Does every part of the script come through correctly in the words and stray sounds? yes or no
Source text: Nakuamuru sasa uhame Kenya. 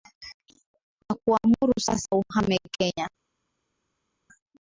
yes